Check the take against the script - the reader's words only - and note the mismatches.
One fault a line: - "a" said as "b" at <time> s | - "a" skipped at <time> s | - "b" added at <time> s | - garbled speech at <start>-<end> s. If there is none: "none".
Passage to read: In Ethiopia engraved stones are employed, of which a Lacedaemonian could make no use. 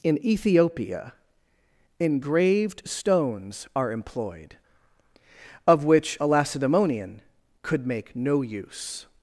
none